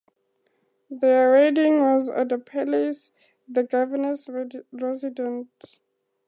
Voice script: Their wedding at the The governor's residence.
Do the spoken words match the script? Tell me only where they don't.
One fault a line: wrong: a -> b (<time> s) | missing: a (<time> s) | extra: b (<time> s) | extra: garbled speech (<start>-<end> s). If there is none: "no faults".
extra: was (1.8 s)
extra: Palace (2.4 s)